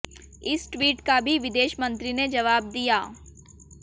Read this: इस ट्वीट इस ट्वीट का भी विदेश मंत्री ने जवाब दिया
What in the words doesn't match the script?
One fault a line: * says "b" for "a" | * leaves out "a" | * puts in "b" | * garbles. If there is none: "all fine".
* leaves out "इस ट्वीट"